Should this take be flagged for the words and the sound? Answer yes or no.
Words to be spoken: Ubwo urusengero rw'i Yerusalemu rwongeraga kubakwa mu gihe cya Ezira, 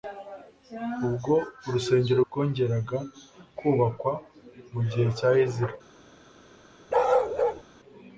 yes